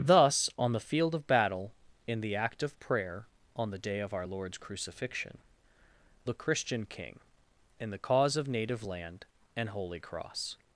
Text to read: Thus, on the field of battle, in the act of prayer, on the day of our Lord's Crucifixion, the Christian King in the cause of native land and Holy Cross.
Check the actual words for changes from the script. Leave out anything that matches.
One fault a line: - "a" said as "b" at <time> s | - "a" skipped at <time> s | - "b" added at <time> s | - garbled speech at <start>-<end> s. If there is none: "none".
none